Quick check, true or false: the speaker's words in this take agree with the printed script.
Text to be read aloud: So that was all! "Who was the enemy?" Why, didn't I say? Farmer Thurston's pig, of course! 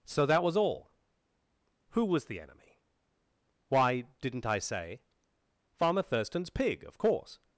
true